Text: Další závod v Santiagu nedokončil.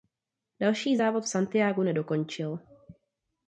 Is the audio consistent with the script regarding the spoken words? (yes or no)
yes